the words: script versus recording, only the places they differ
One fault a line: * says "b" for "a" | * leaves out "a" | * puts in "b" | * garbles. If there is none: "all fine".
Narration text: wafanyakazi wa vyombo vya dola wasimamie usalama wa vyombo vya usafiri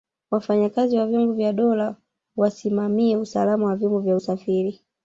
all fine